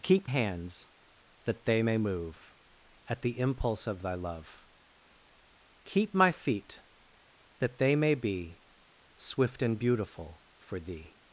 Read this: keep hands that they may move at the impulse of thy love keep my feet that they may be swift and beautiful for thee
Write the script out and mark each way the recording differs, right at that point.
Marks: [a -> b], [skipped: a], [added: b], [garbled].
keep hands that they may move at the impulse of thy love keep my feet that they may be swift and beautiful for thee